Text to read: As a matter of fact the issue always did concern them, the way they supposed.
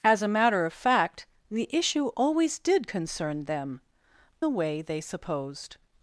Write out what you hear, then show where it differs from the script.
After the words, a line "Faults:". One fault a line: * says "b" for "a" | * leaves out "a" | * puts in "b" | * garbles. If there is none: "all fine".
As a matter of fact the issue always did concern them, the way they supposed.
Faults:
all fine